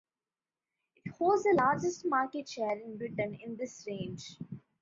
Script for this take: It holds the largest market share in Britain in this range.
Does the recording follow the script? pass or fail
pass